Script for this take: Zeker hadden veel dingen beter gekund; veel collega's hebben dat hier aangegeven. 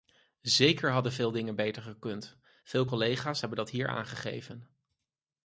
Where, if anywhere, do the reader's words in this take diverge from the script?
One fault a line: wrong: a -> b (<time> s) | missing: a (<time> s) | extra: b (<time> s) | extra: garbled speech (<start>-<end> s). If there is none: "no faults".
no faults